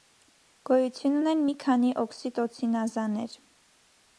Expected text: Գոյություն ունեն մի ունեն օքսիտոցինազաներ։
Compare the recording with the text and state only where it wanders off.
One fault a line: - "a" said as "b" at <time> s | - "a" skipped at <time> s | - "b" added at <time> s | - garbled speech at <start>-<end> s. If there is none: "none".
- "ունեն" said as "քանի" at 1.6 s